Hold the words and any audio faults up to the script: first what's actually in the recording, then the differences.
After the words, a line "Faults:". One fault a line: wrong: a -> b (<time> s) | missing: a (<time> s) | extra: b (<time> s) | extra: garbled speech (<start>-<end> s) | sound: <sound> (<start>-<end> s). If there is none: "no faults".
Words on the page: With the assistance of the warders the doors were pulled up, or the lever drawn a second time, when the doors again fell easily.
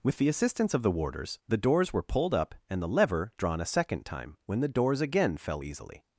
With the assistance of the warders the doors were pulled up, and the lever drawn a second time, when the doors again fell easily.
Faults:
wrong: or -> and (2.7 s)